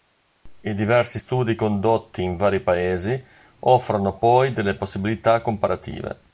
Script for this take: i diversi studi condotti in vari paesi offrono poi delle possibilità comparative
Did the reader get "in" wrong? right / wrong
right